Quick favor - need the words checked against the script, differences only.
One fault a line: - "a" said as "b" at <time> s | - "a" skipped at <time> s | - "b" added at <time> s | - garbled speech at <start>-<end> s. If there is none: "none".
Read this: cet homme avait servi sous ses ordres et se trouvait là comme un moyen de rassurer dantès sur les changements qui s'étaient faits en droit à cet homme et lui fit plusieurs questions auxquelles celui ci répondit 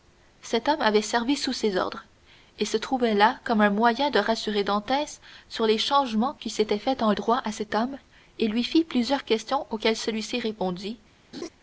none